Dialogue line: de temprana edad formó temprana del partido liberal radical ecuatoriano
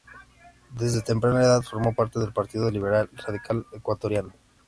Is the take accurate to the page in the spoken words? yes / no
no